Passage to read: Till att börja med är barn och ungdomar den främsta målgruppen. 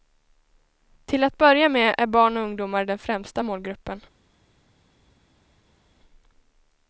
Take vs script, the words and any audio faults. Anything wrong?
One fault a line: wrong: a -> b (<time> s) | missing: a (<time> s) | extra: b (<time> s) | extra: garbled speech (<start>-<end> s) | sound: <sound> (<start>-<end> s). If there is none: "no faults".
no faults